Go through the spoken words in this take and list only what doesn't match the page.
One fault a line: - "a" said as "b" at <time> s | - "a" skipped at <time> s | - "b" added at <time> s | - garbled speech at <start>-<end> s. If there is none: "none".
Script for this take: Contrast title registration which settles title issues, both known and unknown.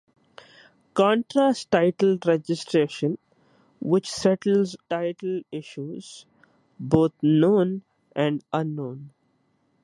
none